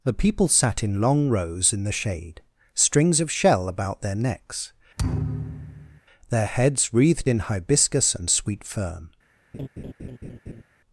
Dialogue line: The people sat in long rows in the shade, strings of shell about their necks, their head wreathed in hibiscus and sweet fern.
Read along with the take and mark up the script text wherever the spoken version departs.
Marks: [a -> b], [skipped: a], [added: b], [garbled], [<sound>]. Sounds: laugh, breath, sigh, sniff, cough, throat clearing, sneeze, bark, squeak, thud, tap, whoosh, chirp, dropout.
The people sat in long rows in the shade, strings of shell about their necks, [thud] their [head -> heads] wreathed in hibiscus and sweet fern. [laugh]